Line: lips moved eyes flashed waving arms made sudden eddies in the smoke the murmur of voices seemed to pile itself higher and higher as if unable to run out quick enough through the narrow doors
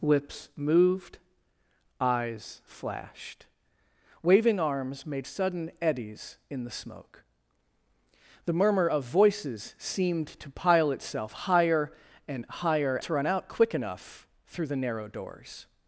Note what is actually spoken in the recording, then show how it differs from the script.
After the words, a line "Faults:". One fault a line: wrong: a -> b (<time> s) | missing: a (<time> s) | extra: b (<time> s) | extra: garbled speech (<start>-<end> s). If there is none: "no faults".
lips moved eyes flashed waving arms made sudden eddies in the smoke the murmur of voices seemed to pile itself higher and higher to run out quick enough through the narrow doors
Faults:
missing: as if unable (13.0 s)